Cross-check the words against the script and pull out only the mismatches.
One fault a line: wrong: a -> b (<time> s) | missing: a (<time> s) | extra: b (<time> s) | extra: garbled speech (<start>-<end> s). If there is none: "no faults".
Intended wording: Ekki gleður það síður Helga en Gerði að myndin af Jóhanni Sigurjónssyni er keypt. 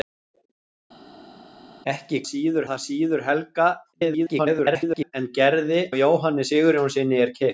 wrong: gleður -> síður (2.3 s)
extra: garbled speech (3.9-5.1 s)
missing: að myndin (5.8 s)